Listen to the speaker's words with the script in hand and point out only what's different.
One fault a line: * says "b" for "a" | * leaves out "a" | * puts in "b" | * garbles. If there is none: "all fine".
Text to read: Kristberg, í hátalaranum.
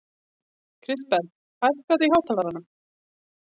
* puts in "hækkaðu"